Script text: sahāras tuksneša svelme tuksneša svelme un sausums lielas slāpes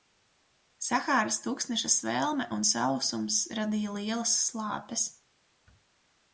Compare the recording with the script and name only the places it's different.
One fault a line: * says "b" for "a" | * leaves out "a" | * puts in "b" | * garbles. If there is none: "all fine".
* leaves out "tuksneša svelme"
* puts in "radīja"